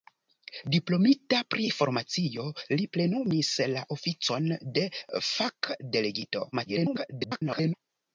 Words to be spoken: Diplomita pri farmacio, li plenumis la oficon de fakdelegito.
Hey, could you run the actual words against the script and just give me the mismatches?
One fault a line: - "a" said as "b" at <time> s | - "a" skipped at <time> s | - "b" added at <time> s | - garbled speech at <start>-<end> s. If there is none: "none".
- garbled speech at 6.5-7.7 s